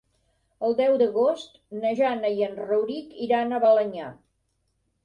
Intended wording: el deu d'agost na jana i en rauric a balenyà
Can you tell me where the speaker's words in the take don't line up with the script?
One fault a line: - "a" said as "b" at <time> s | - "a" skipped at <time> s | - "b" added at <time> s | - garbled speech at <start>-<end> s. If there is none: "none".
- "iran" added at 3.3 s